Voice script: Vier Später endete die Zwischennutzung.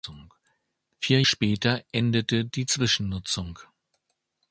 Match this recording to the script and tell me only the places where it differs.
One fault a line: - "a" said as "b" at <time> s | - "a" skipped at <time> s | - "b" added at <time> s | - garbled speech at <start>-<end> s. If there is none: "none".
none